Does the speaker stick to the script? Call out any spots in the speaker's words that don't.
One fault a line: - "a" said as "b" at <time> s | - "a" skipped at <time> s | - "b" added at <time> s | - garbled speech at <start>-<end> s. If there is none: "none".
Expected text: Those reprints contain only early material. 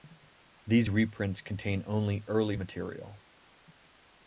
- "Those" said as "These" at 0.7 s